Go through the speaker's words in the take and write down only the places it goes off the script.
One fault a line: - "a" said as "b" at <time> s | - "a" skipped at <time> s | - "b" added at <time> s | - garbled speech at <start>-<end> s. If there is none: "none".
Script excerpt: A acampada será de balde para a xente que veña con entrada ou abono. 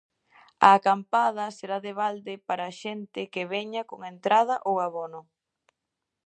none